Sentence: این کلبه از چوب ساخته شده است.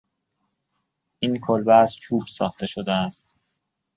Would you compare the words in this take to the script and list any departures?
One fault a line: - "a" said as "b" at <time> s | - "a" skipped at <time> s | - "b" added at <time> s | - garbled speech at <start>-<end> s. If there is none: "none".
none